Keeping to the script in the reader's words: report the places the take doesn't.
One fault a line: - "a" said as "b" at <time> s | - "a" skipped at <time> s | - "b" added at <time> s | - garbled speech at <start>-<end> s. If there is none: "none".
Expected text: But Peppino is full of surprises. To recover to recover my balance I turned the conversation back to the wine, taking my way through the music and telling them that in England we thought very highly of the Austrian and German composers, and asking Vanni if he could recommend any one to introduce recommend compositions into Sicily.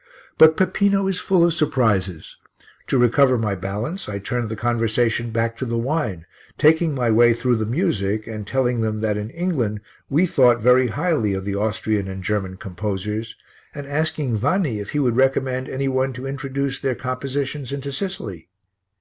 - "to recover" skipped at 3.4 s
- "could" said as "would" at 15.0 s
- "recommend" said as "their" at 16.8 s